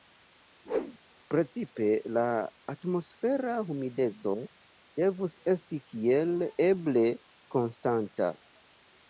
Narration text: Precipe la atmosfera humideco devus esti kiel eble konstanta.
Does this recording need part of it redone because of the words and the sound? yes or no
yes